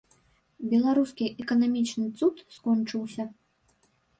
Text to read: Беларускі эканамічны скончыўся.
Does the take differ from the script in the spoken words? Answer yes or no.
yes